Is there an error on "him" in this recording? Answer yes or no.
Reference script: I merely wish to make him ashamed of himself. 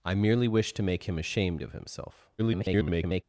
no